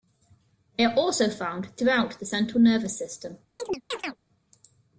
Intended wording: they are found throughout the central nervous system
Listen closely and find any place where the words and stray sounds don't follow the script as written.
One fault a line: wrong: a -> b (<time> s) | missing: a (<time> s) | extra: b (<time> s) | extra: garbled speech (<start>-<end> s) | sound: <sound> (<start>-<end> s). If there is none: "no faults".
extra: also (0.9 s)
sound: chirp (3.6-4.2 s)